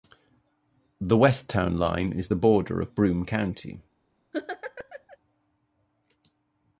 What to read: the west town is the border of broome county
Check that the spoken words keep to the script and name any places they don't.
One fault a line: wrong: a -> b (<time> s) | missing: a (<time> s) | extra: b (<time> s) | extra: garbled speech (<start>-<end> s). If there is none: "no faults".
extra: line (1.8 s)